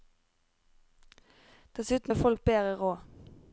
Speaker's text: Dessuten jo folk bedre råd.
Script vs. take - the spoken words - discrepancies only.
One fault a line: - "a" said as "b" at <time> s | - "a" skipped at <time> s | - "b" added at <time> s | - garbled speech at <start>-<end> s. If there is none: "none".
none